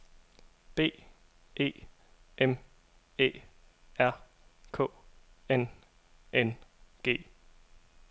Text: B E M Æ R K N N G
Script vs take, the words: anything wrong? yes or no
no